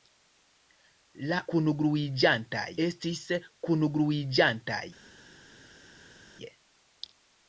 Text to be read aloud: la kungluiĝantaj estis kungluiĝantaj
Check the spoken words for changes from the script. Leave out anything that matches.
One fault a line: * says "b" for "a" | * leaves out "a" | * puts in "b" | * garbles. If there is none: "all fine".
all fine